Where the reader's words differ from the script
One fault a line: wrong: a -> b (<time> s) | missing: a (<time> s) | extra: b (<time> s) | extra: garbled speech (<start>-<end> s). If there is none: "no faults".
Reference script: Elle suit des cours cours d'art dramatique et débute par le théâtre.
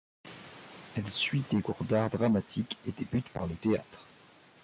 missing: cours (1.8 s)